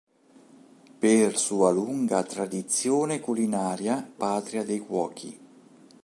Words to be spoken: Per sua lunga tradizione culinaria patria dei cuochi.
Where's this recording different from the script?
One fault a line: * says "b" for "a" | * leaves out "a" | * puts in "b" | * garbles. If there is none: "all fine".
all fine